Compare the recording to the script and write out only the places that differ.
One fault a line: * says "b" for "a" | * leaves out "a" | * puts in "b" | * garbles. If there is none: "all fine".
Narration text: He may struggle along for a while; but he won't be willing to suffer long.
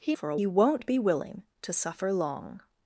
* leaves out "may struggle along"
* leaves out "while but"